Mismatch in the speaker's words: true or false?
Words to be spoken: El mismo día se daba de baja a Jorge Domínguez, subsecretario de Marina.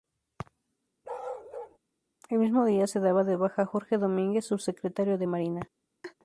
false